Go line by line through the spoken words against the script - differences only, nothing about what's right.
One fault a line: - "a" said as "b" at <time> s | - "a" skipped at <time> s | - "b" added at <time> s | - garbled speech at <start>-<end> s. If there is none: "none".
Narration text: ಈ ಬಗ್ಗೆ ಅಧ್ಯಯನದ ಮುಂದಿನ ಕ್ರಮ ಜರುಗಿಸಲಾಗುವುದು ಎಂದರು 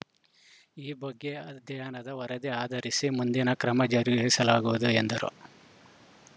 - "ವರದಿ ಆಧರಿಸಿ" added at 2.1 s